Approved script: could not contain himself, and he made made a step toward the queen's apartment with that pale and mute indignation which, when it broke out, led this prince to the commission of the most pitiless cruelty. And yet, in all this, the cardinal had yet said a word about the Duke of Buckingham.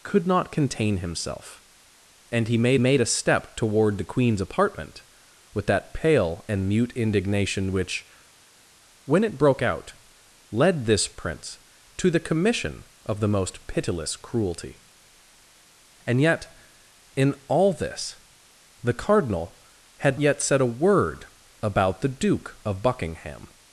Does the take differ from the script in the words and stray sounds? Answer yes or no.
no